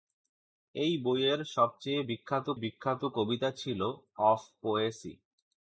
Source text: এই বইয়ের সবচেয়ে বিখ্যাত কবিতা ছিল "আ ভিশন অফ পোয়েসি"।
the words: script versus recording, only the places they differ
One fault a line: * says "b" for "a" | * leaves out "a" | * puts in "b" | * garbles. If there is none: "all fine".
* puts in "বিখ্যাত"
* leaves out "আ ভিশন"